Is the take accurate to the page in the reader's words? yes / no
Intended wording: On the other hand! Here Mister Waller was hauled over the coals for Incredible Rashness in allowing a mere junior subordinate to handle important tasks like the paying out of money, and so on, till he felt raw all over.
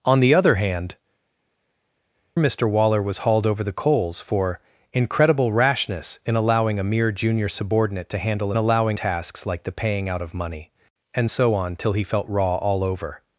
no